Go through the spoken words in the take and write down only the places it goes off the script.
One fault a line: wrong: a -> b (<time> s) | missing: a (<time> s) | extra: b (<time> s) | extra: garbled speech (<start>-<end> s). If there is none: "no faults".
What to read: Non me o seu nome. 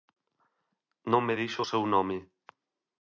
extra: dixo (1.4 s)